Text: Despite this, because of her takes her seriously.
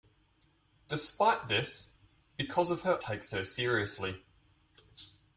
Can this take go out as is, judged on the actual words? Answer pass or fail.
pass